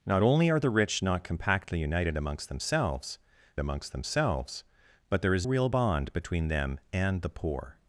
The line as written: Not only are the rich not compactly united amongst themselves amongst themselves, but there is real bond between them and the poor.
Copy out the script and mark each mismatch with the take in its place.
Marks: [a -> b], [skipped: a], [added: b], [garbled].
Not only are the rich not compactly united amongst themselves amongst themselves, but there is real bond between them and the poor.